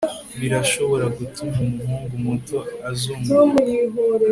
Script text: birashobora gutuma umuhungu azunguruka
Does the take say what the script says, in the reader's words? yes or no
no